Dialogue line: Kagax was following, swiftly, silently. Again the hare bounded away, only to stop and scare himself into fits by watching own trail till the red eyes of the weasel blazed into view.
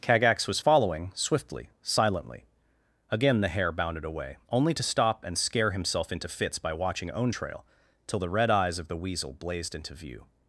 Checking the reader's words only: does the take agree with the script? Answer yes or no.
yes